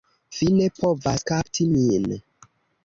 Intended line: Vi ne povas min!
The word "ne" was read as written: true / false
true